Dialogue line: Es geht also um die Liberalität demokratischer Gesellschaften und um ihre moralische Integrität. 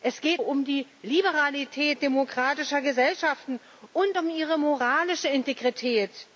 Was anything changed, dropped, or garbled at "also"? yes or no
yes